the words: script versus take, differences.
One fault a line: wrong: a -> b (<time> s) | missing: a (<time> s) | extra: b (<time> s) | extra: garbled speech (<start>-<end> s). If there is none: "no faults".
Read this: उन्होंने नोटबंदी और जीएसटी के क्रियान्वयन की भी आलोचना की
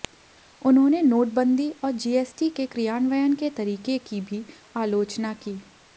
extra: के तरीके (3.3 s)